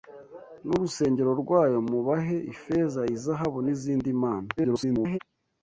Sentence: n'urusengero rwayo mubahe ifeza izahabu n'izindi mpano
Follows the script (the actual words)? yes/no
no